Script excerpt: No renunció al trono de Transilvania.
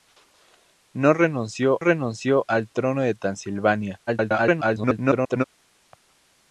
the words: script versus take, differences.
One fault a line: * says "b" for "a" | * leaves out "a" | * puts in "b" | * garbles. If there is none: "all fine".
* puts in "renunció"
* garbles